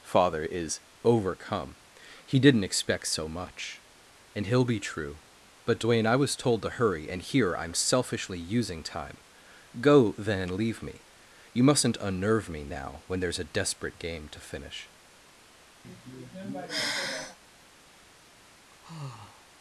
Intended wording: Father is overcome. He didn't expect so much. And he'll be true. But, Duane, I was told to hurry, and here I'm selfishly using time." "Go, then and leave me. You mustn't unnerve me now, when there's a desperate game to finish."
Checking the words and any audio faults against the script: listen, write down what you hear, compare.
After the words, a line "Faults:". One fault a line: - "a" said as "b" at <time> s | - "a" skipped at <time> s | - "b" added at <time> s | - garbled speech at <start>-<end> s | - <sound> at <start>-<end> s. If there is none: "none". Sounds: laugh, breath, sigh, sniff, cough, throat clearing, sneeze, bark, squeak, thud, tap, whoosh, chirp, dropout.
Father is overcome. He didn't expect so much. And he'll be true. But, Duane, I was told to hurry, and here I'm selfishly using time." "Go, then and leave me. You mustn't unnerve me now, when there's a desperate game to finish."
Faults:
- sigh at 15.8-17.4 s
- sigh at 18.7-19.4 s